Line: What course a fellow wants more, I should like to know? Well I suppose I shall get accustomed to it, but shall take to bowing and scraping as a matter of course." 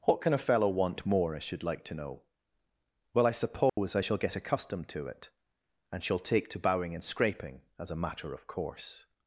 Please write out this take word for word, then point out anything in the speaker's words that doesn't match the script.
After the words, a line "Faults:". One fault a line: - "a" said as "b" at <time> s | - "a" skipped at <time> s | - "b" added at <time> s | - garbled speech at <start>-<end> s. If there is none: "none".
What can a fellow want more, I should like to know? Well I suppose I shall get accustomed to it, and shall take to bowing and scraping as a matter of course."
Faults:
- "course" said as "can" at 0.2 s
- "wants" said as "want" at 0.7 s
- "but" said as "and" at 5.9 s